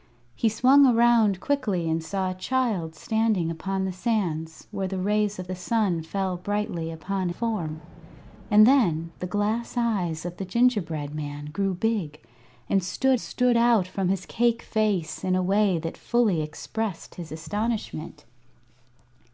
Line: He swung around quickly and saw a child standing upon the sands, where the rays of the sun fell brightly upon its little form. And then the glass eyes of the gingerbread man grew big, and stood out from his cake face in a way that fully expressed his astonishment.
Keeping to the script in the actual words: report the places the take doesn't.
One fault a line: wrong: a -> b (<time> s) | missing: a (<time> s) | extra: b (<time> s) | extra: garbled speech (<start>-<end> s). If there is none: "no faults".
missing: its little (7.3 s)
extra: stood (13.2 s)